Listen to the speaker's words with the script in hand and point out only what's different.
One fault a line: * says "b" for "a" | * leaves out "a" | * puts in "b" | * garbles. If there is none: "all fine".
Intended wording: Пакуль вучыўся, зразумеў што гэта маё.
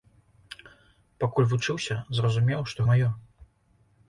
* leaves out "гэта"